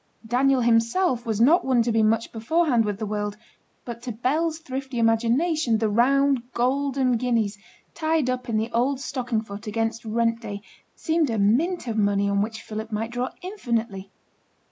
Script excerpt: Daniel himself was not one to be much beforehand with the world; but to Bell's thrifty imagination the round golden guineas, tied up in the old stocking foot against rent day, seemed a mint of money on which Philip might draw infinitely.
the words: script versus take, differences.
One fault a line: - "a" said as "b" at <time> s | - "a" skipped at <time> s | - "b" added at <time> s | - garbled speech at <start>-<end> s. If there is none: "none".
none